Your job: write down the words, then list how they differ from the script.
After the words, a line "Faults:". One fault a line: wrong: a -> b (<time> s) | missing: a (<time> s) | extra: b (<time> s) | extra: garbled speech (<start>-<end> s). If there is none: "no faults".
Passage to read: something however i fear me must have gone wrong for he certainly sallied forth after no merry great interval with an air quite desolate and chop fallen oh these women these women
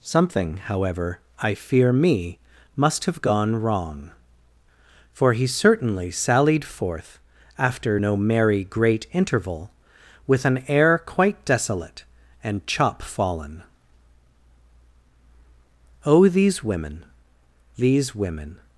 something however i fear me must have gone wrong for he certainly sallied forth after no merry great interval with an air quite desolate and chop fallen oh these women these women
Faults:
no faults